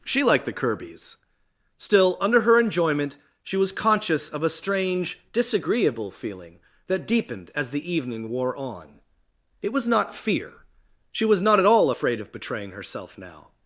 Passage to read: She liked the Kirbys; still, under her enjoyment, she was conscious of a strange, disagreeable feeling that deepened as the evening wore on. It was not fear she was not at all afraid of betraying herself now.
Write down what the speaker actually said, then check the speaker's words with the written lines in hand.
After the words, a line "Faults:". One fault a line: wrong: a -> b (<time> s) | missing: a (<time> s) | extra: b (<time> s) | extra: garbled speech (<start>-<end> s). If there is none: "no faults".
She liked the Kirbys; still, under her enjoyment, she was conscious of a strange, disagreeable feeling that deepened as the evening wore on. It was not fear she was not at all afraid of betraying herself now.
Faults:
no faults